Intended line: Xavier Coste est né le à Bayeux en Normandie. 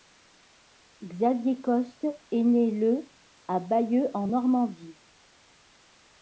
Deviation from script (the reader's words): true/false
false